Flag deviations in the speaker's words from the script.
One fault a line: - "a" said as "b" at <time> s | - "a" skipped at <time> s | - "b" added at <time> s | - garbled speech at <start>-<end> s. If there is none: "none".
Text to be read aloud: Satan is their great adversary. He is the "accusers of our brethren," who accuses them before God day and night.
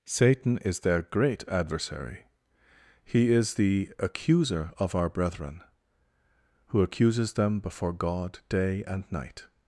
- "accusers" said as "accuser" at 4.0 s